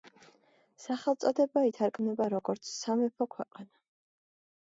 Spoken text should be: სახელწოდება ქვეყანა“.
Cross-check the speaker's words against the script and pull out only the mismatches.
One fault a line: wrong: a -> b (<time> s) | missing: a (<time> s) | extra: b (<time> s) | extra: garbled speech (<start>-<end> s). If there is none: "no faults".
extra: ითარგმნება როგორც სამეფო (1.7 s)